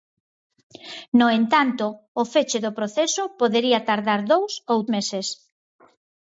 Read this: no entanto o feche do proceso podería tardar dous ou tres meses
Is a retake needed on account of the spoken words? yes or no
yes